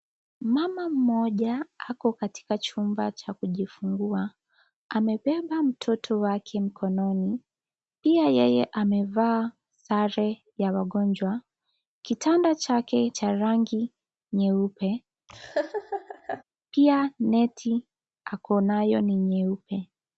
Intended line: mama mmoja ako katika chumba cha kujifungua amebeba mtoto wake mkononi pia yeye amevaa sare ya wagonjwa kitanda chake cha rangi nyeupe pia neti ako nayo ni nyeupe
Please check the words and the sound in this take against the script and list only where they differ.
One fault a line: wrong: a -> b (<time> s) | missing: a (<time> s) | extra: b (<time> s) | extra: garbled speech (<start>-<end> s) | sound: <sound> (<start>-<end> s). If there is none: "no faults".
sound: laugh (15.3-16.4 s)